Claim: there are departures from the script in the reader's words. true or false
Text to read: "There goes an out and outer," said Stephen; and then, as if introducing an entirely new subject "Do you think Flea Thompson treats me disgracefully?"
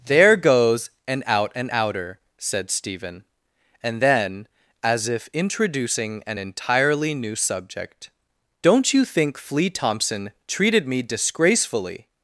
true